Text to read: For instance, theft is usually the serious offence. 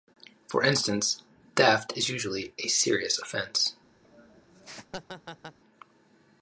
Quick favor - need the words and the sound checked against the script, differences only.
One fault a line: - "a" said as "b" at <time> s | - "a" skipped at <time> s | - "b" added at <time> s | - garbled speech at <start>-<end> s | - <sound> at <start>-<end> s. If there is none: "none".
- "the" said as "a" at 2.6 s
- laugh at 4.0-5.6 s